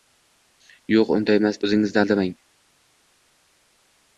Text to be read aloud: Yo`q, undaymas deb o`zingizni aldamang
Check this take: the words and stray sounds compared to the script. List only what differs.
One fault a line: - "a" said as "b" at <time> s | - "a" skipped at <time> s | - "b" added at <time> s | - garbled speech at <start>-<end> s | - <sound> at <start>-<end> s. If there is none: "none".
- "deb" skipped at 1.6 s